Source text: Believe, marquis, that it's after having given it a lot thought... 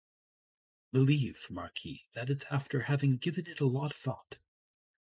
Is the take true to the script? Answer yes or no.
yes